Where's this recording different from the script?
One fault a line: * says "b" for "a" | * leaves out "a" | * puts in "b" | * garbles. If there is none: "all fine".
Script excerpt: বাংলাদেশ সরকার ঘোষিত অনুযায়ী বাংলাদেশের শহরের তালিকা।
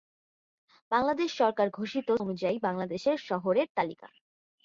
all fine